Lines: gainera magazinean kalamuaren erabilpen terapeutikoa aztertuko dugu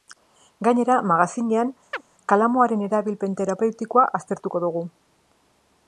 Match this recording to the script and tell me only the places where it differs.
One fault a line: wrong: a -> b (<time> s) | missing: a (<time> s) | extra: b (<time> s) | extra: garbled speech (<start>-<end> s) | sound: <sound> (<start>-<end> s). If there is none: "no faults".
sound: chirp (1.9-2.0 s)